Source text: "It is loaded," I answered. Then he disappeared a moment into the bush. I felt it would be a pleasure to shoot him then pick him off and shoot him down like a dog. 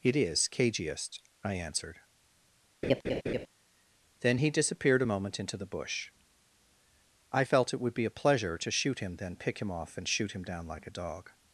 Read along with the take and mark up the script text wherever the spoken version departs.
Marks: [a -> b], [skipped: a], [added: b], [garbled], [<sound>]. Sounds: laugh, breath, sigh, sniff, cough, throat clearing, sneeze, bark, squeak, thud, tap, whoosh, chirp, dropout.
"It is [loaded," -> cagiest] I answered. [laugh] Then he disappeared a moment into the bush. I felt it would be a pleasure to shoot him then pick him off and shoot him down like a dog.